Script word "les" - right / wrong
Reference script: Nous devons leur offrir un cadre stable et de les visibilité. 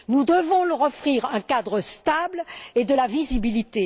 wrong